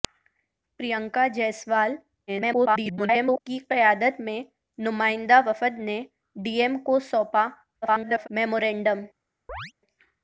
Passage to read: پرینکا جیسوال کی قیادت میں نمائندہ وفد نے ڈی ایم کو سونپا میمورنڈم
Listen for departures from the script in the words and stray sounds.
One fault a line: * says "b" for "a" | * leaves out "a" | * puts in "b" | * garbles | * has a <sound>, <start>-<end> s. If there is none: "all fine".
* garbles
* garbles
* has a chirp, 9.5-9.7 s